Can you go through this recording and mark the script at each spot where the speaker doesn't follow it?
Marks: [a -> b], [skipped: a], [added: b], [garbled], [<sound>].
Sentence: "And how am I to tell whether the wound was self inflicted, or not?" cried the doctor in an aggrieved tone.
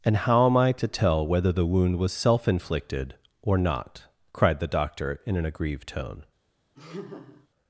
"And how am I to tell whether the wound was self inflicted, or not?" cried the doctor in an aggrieved tone. [laugh]